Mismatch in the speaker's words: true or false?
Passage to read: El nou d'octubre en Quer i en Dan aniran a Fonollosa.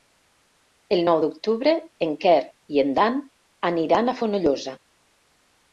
false